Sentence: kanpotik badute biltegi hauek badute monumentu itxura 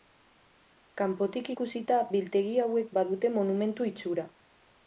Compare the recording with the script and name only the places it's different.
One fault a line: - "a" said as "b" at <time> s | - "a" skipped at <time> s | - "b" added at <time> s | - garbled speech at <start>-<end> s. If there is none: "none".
- "badute" said as "ikusita" at 1.5 s